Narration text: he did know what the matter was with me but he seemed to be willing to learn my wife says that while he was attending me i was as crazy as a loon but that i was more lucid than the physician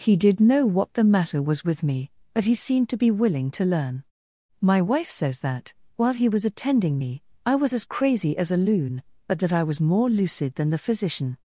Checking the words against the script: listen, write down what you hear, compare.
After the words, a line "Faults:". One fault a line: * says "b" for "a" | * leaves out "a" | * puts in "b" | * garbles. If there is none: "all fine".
he did know what the matter was with me but he seemed to be willing to learn my wife says that while he was attending me i was as crazy as a loon but that i was more lucid than the physician
Faults:
all fine